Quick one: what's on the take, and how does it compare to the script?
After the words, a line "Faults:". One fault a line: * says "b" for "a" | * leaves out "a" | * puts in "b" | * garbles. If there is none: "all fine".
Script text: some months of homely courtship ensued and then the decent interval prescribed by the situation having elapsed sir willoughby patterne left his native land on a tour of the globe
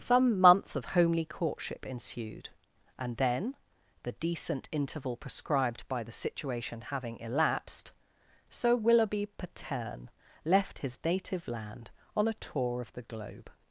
some months of homely courtship ensued and then the decent interval prescribed by the situation having elapsed sir willoughby patterne left his native land on a tour of the globe
Faults:
all fine